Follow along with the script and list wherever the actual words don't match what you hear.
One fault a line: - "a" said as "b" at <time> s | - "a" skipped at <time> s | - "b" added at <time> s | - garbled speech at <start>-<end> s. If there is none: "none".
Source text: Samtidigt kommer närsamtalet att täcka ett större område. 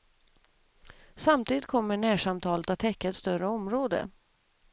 none